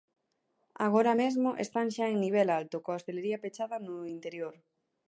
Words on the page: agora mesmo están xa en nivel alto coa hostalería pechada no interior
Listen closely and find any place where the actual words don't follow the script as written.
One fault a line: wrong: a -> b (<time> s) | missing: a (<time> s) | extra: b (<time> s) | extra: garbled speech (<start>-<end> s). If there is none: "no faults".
no faults